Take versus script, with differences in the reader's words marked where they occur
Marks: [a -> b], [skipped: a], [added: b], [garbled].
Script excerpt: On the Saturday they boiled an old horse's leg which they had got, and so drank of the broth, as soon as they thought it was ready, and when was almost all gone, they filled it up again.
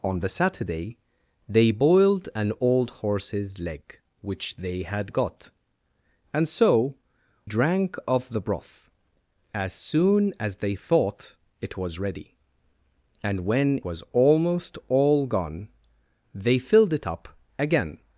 On the Saturday they boiled an old horse's leg which they had got, and so drank of the broth, as soon as they thought it was ready, and when was almost all gone, they filled it up again.